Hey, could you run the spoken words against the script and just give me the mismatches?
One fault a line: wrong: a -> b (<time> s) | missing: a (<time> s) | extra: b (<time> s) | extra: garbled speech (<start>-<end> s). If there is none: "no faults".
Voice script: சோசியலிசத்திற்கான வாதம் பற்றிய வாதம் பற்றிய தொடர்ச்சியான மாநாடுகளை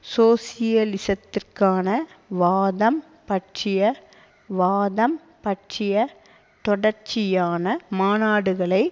no faults